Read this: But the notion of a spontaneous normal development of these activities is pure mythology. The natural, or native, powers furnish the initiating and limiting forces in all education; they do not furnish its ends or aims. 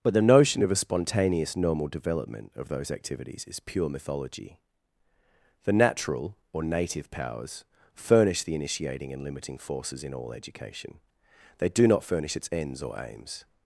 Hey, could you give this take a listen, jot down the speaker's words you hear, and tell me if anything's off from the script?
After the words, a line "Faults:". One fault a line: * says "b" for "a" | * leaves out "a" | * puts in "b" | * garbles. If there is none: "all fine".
But the notion of a spontaneous normal development of those activities is pure mythology. The natural, or native, powers furnish the initiating and limiting forces in all education; they do not furnish its ends or aims.
Faults:
* says "those" for "these"